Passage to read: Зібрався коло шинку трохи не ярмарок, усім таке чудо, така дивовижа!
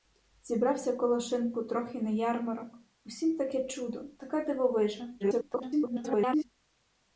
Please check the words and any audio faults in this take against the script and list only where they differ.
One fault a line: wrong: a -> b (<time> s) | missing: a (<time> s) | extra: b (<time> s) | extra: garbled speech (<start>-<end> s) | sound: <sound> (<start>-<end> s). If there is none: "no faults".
extra: garbled speech (5.2-6.4 s)